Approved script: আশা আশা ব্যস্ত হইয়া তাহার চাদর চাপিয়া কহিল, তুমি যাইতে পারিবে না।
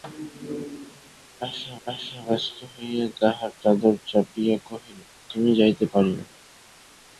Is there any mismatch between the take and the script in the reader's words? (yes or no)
no